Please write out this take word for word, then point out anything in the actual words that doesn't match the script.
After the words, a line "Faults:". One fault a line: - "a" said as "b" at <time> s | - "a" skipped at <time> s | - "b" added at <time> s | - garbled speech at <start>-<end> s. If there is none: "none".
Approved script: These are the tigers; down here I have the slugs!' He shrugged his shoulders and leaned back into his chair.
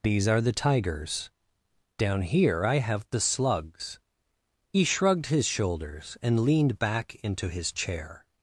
These are the tigers; down here I have the slugs!' He shrugged his shoulders and leaned back into his chair.
Faults:
none